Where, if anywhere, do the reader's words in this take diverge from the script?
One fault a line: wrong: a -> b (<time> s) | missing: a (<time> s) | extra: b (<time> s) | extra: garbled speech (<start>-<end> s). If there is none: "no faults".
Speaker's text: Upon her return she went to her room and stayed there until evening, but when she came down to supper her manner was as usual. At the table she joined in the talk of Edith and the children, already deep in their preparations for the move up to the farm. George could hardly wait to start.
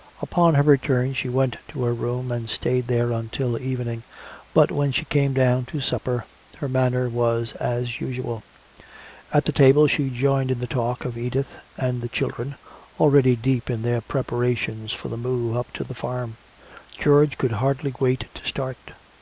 no faults